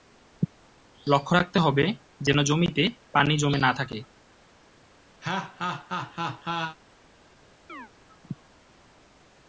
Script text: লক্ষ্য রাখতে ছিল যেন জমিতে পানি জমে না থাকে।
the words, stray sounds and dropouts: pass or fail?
fail